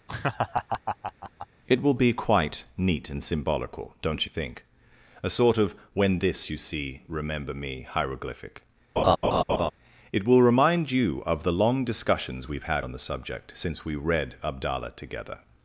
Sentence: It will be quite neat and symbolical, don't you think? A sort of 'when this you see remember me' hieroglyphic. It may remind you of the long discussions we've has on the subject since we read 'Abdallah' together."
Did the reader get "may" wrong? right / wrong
wrong